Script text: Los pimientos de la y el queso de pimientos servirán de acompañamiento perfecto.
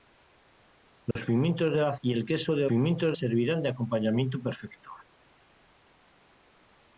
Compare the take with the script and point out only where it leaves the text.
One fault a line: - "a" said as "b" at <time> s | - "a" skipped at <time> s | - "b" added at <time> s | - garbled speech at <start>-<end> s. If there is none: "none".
none